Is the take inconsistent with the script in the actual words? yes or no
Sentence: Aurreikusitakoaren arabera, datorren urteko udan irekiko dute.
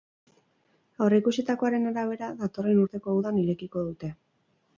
no